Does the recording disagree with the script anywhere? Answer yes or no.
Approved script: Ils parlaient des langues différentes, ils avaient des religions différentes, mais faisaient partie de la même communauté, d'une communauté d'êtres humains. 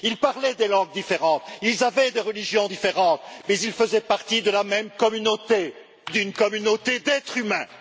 yes